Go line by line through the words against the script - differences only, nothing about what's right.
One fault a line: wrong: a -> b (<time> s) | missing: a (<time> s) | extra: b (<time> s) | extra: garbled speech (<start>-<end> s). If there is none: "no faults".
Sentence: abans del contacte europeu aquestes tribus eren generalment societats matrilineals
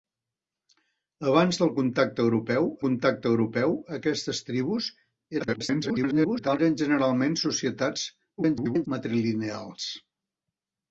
extra: contacte europeu (2.9 s)
extra: garbled speech (5.4-6.6 s)
extra: garbled speech (8.4-8.9 s)